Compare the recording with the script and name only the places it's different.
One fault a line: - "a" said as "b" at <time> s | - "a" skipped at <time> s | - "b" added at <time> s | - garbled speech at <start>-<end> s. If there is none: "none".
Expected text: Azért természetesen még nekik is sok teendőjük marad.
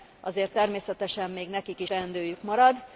- "sok" skipped at 1.9 s